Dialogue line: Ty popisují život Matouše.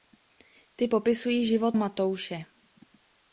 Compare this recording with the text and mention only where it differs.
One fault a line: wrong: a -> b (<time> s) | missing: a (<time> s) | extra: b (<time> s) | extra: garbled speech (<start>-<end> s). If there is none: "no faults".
no faults